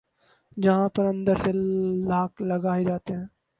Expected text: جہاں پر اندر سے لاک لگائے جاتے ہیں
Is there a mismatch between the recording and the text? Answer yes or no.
no